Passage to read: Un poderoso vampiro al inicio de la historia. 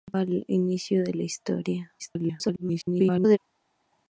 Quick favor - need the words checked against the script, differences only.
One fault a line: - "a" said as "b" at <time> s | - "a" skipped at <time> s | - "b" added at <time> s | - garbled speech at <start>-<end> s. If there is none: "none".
- "poderoso vampiro" skipped at 0.1 s
- garbled speech at 2.0-3.4 s